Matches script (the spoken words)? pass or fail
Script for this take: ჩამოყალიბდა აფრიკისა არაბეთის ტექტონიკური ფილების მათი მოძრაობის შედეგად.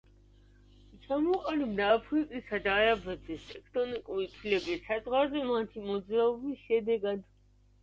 fail